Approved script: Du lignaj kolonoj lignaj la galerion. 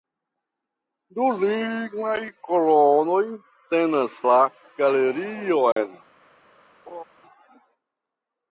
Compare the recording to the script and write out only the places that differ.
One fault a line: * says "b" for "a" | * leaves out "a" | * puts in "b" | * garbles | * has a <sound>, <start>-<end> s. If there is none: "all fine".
* says "tenas" for "lignaj"
* has a dropout, 5.7-5.8 s
* has a laugh, 6.9-7.0 s